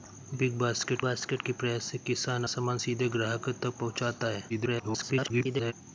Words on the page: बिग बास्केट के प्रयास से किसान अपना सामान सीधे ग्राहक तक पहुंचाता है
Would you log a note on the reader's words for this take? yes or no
yes